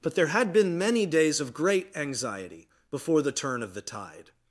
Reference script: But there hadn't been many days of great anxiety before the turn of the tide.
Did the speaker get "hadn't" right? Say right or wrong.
wrong